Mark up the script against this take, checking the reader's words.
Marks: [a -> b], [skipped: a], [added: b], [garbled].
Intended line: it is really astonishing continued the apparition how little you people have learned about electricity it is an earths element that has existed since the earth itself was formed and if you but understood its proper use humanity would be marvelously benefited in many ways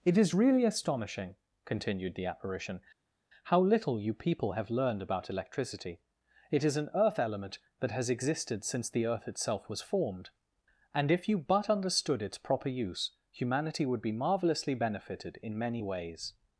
it is really astonishing continued the apparition how little you people have learned about electricity it is an [earths -> earth] element that has existed since the earth itself was formed and if you but understood its proper use humanity would be marvelously benefited in many ways